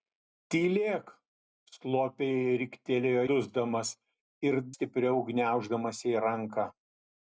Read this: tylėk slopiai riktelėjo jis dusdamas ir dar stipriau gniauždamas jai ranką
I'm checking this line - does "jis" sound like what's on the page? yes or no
no